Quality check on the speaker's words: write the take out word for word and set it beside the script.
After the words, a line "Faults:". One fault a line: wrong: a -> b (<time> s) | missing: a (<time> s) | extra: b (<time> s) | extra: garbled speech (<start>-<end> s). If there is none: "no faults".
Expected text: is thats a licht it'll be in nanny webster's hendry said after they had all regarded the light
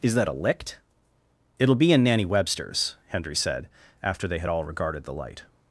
is that a licht it'll be in nanny webster's hendry said after they had all regarded the light
Faults:
wrong: thats -> that (0.1 s)